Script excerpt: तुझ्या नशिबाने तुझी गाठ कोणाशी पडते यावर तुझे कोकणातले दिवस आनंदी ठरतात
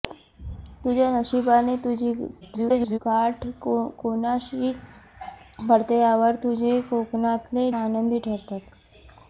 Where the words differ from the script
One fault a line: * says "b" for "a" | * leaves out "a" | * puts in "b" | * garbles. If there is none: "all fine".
* garbles
* leaves out "दिवस"